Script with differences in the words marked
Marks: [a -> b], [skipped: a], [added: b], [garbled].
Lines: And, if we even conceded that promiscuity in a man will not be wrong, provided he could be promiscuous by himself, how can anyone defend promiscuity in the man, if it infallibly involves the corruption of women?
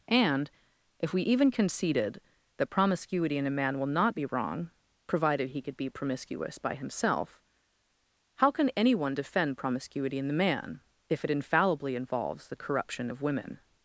And, if we even conceded that promiscuity in a man will not be wrong, provided he could be promiscuous by himself, how can anyone defend promiscuity in the man, if it infallibly involves the corruption of women?